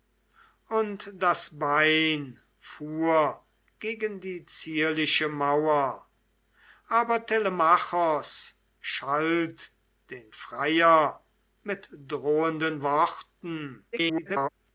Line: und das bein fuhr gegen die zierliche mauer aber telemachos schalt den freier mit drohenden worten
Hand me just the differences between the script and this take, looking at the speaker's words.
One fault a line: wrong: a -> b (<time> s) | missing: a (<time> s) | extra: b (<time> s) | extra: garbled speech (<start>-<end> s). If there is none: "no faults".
extra: garbled speech (13.9-14.5 s)